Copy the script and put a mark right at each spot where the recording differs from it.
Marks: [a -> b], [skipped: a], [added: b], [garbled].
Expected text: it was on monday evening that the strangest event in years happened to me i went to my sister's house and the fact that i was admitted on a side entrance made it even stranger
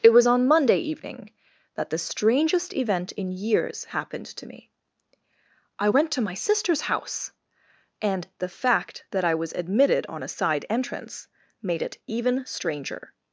it was on monday evening that the strangest event in years happened to me i went to my sister's house and the fact that i was admitted on a side entrance made it even stranger